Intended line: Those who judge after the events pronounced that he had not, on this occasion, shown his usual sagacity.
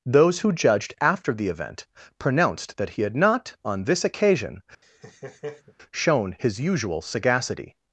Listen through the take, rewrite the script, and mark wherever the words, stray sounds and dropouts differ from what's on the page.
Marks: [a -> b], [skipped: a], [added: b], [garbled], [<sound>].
Those who [judge -> judged] after the [events -> event] pronounced that he had not, on this occasion, [laugh] shown his usual sagacity.